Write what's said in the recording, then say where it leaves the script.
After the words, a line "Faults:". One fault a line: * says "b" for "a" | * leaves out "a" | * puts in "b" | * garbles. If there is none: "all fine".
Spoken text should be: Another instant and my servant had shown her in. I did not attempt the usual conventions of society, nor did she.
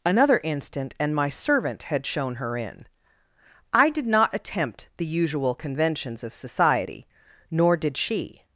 Another instant and my servant had shown her in. I did not attempt the usual conventions of society, nor did she.
Faults:
all fine